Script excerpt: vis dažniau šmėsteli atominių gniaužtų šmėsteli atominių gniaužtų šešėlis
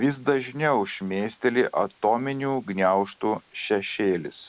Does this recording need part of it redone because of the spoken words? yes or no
yes